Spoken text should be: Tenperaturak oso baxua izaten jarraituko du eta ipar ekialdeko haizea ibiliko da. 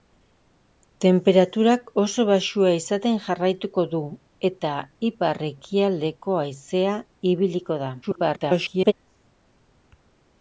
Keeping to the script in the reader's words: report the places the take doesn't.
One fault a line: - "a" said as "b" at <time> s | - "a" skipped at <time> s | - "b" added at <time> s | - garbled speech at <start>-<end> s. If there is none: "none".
- garbled speech at 8.0-8.9 s